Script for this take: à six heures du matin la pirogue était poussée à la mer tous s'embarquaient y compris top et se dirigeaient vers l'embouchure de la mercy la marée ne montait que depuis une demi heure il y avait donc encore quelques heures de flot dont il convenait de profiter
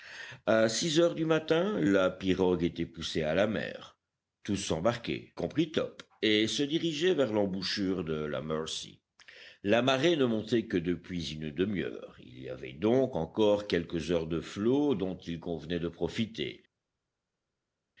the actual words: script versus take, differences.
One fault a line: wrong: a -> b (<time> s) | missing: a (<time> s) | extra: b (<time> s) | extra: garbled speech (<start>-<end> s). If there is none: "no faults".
missing: y (5.3 s)